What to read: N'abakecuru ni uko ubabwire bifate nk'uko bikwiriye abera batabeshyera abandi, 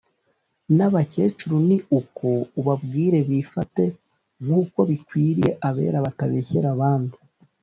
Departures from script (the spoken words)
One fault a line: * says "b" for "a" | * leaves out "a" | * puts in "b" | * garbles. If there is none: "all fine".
all fine